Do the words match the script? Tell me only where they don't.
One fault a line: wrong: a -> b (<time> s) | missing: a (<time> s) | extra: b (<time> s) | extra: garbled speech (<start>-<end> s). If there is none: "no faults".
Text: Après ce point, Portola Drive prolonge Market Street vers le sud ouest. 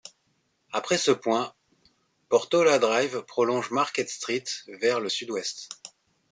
no faults